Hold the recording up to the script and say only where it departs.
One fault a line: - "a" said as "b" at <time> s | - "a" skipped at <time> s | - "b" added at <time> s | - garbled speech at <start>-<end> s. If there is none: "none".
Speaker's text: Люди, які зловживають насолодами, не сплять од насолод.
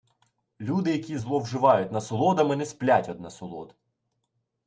none